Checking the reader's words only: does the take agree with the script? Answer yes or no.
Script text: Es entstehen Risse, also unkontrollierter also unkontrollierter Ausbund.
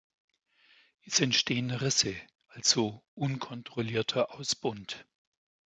no